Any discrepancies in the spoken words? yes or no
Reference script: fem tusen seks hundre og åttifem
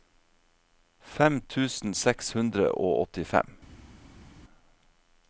no